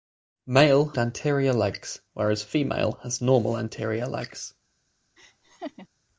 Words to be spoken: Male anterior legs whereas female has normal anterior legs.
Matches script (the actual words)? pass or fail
pass